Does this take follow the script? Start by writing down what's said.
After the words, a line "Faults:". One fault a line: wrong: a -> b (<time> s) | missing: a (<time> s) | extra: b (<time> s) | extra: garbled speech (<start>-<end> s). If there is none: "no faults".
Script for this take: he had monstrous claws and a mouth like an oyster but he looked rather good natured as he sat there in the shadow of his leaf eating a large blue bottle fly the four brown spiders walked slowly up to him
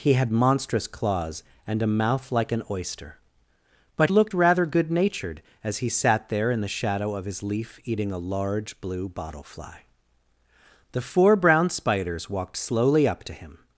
he had monstrous claws and a mouth like an oyster but looked rather good natured as he sat there in the shadow of his leaf eating a large blue bottle fly the four brown spiders walked slowly up to him
Faults:
missing: he (4.1 s)